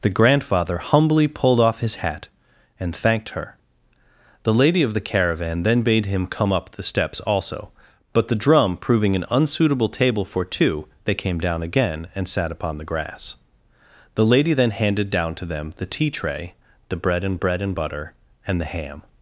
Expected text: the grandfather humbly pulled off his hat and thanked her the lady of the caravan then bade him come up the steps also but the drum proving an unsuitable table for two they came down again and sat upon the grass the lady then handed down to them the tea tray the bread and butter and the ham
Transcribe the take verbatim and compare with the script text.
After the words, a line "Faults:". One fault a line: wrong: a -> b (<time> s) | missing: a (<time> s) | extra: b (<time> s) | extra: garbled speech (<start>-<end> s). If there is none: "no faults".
the grandfather humbly pulled off his hat and thanked her the lady of the caravan then bade him come up the steps also but the drum proving an unsuitable table for two they came down again and sat upon the grass the lady then handed down to them the tea tray the bread and bread and butter and the ham
Faults:
extra: bread and (17.4 s)